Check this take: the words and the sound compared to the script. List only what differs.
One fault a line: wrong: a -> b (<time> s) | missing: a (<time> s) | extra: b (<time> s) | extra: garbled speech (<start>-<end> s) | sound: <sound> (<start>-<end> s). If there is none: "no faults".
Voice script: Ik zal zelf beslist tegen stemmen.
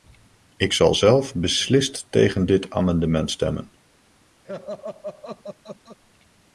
extra: dit amendement (2.5 s)
sound: laugh (4.5-6.0 s)